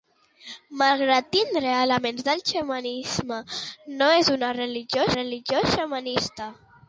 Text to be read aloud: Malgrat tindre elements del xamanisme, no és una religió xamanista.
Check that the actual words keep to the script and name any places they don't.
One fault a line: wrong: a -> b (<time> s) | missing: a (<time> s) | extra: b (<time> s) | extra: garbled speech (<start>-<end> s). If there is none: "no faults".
extra: religió (5.2 s)